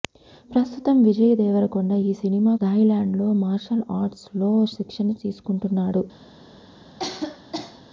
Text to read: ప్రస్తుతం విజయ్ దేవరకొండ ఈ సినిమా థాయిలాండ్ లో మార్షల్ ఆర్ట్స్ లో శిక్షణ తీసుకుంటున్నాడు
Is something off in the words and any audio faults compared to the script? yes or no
yes